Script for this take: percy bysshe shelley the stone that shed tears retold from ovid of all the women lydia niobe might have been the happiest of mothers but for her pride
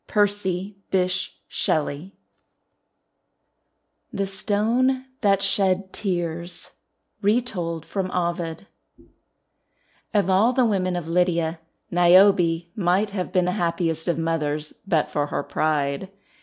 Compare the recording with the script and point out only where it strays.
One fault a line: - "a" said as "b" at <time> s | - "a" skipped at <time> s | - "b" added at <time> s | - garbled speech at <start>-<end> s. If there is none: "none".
- "of" added at 10.9 s